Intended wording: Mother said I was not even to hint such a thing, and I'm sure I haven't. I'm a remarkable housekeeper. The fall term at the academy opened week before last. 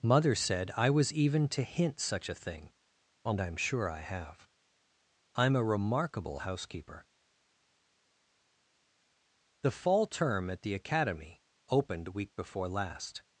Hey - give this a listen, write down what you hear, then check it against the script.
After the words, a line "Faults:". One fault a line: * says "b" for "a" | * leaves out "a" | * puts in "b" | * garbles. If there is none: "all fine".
Mother said I was even to hint such a thing, and I'm sure I have. I'm a remarkable housekeeper. The fall term at the academy opened week before last.
Faults:
* leaves out "not"
* says "have" for "haven't"